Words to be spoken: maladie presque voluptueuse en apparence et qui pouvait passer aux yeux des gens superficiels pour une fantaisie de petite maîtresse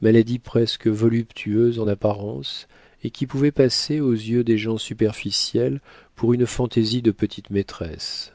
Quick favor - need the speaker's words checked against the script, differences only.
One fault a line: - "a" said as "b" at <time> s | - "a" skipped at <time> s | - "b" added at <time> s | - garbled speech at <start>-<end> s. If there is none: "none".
none